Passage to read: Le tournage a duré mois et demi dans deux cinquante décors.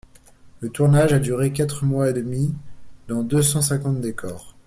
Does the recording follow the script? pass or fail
fail